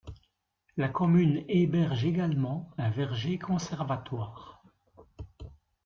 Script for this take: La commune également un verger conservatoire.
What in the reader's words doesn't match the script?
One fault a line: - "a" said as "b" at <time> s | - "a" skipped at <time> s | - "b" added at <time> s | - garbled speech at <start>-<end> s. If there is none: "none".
- "héberge" added at 1.5 s